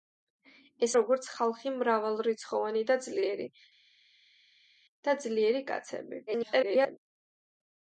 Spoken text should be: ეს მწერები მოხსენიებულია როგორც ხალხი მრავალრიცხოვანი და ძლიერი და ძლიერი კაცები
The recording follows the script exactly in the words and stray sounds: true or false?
false